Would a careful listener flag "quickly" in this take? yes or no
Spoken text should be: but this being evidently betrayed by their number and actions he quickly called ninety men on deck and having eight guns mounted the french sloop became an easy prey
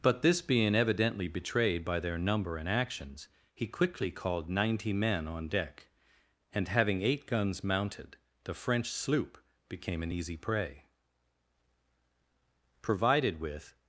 no